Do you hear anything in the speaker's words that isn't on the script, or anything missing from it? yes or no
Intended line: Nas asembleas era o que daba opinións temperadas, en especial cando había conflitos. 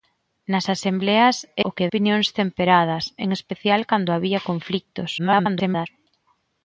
yes